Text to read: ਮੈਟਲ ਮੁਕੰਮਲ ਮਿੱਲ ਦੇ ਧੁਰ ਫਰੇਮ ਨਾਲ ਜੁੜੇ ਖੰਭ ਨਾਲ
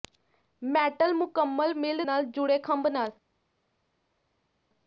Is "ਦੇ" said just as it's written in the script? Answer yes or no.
no